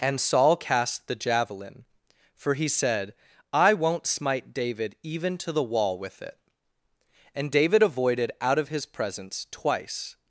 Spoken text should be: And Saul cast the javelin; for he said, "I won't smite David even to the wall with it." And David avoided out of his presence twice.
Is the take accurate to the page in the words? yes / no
yes